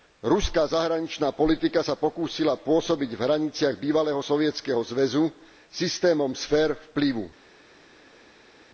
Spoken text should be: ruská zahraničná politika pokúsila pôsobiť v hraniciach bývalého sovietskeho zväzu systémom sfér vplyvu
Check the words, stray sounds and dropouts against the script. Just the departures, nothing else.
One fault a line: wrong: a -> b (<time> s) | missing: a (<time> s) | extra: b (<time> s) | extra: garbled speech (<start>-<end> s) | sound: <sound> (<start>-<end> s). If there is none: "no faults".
extra: sa (1.8 s)